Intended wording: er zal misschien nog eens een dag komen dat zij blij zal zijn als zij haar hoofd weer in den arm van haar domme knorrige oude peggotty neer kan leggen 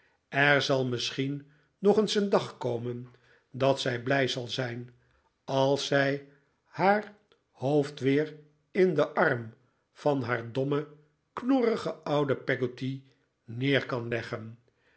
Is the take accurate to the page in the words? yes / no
yes